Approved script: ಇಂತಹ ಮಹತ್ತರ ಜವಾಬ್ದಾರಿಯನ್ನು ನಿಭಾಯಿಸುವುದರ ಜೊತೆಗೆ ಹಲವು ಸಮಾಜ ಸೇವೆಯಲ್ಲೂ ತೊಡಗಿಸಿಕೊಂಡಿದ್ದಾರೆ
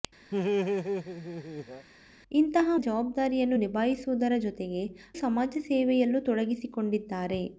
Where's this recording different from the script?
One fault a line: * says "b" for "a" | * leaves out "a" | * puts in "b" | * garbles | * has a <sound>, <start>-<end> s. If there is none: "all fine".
* has a laugh, 0.3-1.9 s
* leaves out "ಮಹತ್ತರ"
* leaves out "ಹಲವು"